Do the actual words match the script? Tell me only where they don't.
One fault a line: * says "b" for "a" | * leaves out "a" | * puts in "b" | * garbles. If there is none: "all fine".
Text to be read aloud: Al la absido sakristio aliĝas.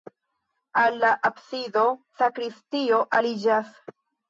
all fine